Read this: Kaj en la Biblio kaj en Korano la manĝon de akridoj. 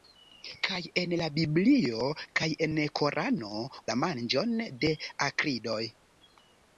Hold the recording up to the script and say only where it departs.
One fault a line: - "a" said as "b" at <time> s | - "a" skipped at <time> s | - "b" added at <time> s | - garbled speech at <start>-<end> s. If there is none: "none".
none